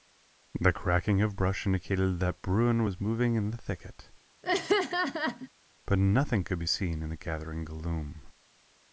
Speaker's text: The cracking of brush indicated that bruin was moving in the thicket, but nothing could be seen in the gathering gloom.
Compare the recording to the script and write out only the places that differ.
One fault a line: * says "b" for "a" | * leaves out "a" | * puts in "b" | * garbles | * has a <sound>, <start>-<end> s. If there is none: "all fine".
* has a laugh, 4.4-5.5 s